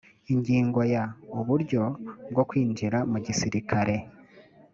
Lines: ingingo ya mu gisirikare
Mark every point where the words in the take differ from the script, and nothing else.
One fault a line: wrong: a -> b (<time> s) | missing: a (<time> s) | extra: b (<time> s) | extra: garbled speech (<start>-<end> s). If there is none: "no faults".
extra: uburyo bwo kwinjira (1.4 s)